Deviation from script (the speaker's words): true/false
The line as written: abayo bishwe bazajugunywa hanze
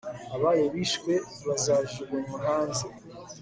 false